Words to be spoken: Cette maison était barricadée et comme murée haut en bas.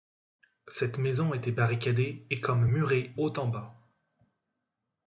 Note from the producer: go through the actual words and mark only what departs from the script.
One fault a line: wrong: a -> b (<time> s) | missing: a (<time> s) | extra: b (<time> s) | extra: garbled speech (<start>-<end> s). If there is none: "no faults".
no faults